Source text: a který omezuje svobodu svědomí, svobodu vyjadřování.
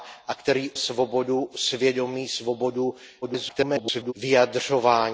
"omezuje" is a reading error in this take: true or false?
true